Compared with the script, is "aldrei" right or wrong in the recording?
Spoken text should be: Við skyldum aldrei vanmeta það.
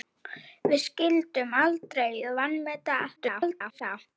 right